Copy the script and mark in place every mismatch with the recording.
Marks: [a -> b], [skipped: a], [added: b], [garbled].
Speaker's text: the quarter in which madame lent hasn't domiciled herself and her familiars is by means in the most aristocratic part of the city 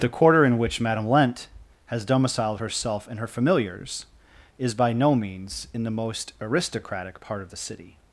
the quarter in which madame lent [hasn't -> has] domiciled herself and her familiars is by [added: no] means in the most aristocratic part of the city